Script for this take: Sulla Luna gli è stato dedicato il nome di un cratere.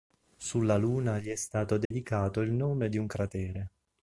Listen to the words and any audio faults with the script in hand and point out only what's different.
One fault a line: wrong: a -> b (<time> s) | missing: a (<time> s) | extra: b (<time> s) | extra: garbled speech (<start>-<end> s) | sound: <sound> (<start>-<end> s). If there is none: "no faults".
sound: dropout (1.8-1.9 s)